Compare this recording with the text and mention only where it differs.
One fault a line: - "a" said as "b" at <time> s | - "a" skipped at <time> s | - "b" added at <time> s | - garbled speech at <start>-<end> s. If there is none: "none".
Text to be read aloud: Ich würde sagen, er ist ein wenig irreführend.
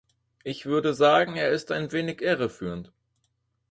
none